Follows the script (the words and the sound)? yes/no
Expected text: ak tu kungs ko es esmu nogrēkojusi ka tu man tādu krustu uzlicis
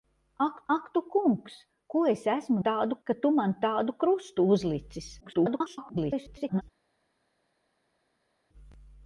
no